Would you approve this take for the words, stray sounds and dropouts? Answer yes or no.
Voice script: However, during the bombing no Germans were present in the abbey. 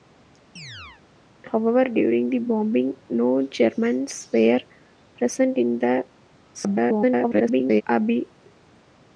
no